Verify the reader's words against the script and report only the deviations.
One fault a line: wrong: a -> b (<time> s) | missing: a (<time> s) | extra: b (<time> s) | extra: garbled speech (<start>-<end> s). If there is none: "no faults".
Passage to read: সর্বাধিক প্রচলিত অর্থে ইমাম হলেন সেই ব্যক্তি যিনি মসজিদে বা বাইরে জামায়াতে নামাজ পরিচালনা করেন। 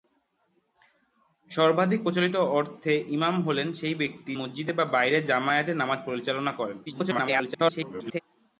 missing: যিনি (4.3 s)
extra: garbled speech (6.9-8.2 s)